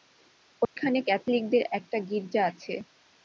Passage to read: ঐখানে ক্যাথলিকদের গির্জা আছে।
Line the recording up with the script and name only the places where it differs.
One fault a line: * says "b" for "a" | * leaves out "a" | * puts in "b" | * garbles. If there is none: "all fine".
* puts in "একটা"